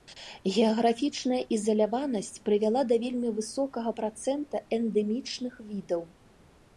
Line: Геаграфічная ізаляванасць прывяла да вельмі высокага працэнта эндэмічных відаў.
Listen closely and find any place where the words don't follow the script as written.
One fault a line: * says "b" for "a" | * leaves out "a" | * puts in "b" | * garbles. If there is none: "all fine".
all fine